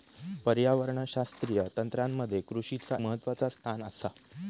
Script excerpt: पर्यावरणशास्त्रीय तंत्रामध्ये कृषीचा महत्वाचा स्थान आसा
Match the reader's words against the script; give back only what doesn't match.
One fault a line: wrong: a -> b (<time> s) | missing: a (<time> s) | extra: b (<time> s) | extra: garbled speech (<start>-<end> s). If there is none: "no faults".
no faults